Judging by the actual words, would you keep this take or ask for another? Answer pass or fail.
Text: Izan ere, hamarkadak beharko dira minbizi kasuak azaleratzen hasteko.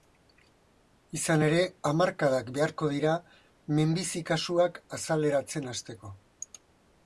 pass